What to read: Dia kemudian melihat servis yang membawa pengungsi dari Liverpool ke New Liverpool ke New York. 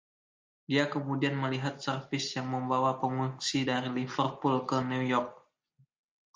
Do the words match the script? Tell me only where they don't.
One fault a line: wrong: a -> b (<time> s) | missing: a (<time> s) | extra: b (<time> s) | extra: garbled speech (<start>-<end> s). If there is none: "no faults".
missing: Liverpool ke New (5.0 s)